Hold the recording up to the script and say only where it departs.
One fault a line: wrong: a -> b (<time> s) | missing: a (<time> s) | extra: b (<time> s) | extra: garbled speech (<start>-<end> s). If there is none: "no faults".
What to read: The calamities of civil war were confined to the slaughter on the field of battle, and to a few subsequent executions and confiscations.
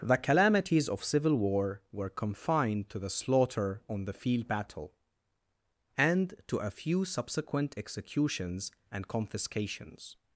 missing: of (4.5 s)